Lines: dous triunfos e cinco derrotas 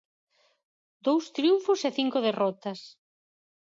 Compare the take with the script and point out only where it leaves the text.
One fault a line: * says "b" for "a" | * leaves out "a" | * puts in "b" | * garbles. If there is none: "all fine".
all fine